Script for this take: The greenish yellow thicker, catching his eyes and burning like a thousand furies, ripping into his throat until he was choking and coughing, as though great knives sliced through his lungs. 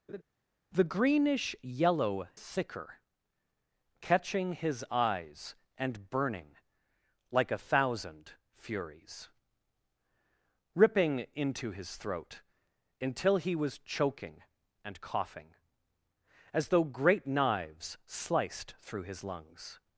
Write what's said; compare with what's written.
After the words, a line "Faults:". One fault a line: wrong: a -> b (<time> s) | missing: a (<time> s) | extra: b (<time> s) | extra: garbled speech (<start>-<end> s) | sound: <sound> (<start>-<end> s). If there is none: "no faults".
The greenish yellow thicker, catching his eyes and burning like a thousand furies, ripping into his throat until he was choking and coughing, as though great knives sliced through his lungs.
Faults:
sound: laugh (0.1-0.2 s)